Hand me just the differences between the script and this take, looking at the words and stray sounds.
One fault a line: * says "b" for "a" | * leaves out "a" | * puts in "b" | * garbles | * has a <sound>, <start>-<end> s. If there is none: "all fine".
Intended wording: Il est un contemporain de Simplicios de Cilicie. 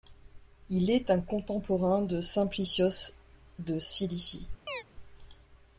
* has a chirp, 4.7-4.8 s